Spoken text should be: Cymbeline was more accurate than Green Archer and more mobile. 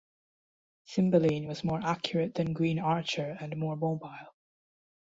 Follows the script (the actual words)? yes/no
yes